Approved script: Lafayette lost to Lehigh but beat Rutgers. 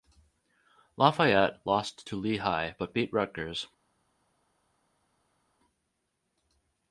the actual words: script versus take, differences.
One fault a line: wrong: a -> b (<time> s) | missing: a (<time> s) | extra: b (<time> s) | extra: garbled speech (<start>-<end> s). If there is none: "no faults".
no faults